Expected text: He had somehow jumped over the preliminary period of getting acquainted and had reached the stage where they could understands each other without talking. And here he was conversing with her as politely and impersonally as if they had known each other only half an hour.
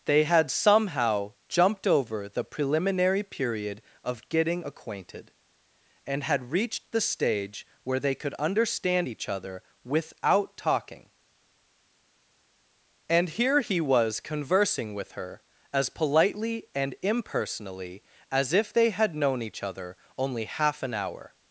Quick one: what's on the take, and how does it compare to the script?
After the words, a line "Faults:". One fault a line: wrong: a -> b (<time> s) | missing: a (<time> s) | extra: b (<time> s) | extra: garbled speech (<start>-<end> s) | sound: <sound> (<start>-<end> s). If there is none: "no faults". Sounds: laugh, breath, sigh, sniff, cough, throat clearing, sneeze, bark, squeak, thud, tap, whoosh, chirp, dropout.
They had somehow jumped over the preliminary period of getting acquainted and had reached the stage where they could understand each other without talking. And here he was conversing with her as politely and impersonally as if they had known each other only half an hour.
Faults:
wrong: He -> They (0.1 s)
wrong: understands -> understand (8.3 s)